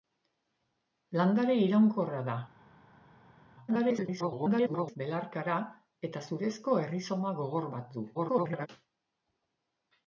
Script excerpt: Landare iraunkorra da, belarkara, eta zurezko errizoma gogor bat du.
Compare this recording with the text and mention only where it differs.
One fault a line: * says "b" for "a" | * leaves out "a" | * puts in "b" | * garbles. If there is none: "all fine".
* garbles
* garbles